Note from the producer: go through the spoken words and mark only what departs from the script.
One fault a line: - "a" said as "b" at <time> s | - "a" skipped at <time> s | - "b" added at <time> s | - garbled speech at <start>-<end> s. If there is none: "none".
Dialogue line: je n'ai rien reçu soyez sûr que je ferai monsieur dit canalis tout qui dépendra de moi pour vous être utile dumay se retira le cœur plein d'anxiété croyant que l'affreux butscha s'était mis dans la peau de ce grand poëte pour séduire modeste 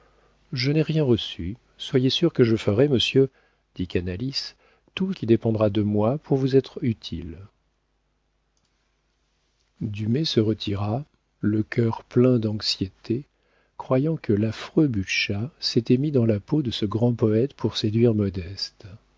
none